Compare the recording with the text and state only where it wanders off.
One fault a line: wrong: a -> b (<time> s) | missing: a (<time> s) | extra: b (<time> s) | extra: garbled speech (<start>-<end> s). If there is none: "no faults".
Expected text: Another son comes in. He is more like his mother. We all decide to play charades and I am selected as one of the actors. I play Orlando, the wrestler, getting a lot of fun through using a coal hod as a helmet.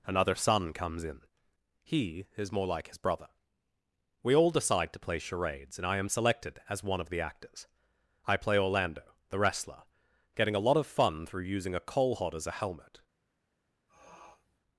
wrong: mother -> brother (3.0 s)